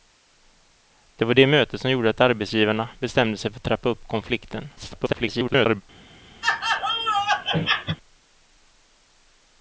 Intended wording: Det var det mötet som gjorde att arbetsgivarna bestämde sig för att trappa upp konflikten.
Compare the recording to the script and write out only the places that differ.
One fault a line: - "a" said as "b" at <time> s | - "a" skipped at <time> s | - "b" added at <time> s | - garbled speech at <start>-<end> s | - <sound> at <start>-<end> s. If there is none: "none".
- garbled speech at 4.8-5.8 s
- laugh at 6.4-8.0 s